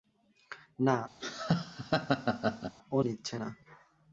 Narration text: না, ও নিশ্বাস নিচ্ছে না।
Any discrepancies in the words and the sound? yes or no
yes